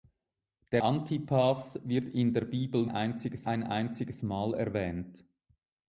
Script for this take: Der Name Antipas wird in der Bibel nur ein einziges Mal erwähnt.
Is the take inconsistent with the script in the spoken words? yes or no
yes